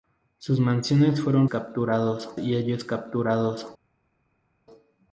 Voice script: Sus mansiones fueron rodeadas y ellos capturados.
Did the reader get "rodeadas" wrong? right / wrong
wrong